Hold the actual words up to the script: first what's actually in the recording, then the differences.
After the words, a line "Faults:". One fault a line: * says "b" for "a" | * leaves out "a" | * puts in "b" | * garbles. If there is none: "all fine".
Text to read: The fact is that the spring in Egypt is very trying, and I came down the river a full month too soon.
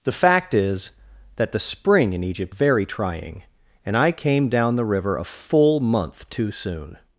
The fact is that the spring in Egypt very trying, and I came down the river a full month too soon.
Faults:
* leaves out "is"